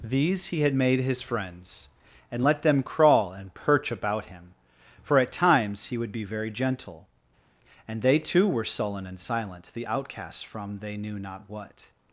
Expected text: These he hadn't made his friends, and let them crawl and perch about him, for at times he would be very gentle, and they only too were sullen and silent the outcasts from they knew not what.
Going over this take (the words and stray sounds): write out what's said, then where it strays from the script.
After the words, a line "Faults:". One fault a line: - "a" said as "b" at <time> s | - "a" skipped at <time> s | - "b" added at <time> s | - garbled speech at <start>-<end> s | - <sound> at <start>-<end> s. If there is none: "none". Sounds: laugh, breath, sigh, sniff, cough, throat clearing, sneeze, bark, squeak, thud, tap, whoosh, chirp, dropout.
These he had made his friends, and let them crawl and perch about him, for at times he would be very gentle, and they too were sullen and silent the outcasts from they knew not what.
Faults:
- "hadn't" said as "had" at 0.6 s
- "only" skipped at 8.2 s